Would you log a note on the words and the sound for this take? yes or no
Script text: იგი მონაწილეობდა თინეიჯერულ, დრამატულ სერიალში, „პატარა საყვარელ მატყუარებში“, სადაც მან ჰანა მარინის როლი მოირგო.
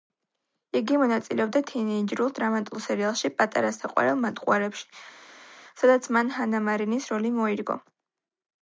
no